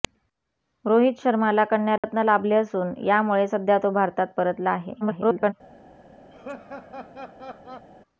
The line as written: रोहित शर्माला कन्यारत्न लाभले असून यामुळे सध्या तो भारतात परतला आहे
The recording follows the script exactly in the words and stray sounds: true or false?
false